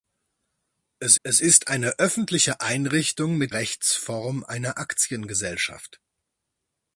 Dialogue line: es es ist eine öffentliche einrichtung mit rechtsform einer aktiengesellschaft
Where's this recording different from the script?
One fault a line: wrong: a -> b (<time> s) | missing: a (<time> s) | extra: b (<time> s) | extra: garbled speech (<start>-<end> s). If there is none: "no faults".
no faults